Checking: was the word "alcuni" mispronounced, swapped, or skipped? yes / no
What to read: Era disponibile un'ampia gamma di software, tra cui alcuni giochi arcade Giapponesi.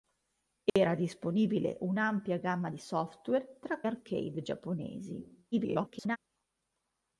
yes